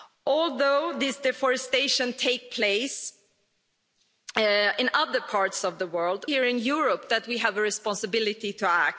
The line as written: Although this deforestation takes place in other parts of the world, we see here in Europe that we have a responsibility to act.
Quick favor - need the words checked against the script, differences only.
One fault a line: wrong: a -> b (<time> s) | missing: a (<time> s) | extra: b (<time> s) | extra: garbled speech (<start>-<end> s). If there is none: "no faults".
missing: we see (6.2 s)